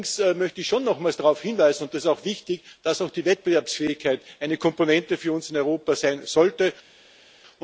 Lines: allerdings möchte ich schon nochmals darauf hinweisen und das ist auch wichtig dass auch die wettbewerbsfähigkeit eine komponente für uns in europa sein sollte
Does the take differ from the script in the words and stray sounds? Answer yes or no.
no